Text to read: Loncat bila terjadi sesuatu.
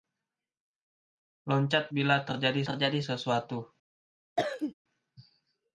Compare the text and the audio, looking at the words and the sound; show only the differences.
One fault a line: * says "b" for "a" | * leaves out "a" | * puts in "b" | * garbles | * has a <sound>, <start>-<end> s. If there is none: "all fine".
* puts in "terjadi"
* has a cough, 4.4-4.7 s